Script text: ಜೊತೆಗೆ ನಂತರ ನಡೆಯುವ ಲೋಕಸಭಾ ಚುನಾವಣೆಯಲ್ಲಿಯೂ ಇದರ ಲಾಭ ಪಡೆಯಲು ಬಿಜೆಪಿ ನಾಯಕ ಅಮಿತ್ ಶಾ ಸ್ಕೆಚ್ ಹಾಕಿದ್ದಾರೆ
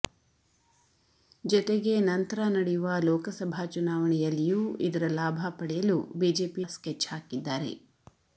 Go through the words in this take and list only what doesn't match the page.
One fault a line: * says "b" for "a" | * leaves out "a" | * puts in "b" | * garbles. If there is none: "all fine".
* leaves out "ನಾಯಕ ಅಮಿತ್ ಶಾ"